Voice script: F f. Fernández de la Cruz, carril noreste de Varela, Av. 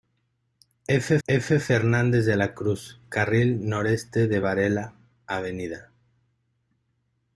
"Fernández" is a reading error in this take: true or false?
false